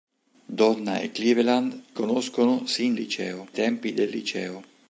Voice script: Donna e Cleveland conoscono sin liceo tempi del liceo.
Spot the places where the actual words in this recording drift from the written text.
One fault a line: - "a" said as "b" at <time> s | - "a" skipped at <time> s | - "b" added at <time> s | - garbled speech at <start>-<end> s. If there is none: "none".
none